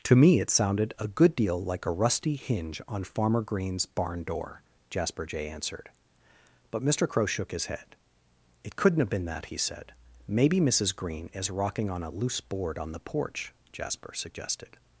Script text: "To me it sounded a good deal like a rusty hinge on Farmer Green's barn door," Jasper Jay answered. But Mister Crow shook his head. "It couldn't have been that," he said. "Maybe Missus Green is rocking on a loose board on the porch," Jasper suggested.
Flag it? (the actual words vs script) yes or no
no